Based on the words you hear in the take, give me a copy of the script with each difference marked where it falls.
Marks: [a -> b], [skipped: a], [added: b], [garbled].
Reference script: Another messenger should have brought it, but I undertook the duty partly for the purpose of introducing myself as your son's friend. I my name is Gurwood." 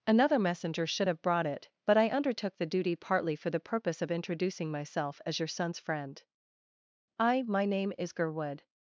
Another messenger should have brought it, but I undertook the duty partly for the purpose of introducing myself as your son's friend. I my name is Gurwood."